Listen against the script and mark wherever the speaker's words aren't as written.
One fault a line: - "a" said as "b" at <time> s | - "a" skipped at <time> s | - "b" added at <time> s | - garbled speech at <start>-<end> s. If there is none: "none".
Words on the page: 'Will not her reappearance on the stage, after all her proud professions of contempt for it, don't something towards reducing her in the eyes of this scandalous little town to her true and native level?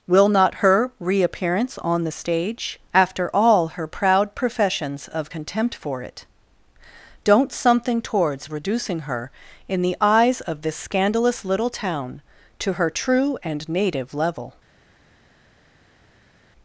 none